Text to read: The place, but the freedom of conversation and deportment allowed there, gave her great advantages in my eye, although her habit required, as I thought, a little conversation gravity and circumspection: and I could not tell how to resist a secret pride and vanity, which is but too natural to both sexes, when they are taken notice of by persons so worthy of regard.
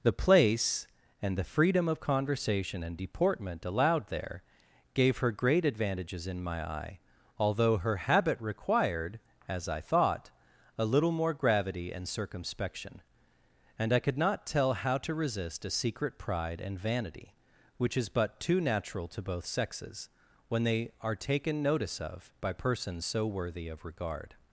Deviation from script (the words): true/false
true